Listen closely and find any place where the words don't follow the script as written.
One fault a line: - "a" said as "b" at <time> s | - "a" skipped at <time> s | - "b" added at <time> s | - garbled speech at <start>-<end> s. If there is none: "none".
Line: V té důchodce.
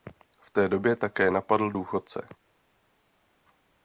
- "době také napadl" added at 0.7 s